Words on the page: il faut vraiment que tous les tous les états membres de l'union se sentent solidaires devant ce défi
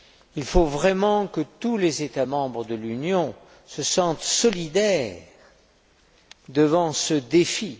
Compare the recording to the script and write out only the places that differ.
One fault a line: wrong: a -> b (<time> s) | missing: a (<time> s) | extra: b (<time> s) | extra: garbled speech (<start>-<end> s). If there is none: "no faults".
missing: tous les (2.0 s)